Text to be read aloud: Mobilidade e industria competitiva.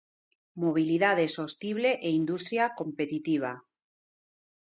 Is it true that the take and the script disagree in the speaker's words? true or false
true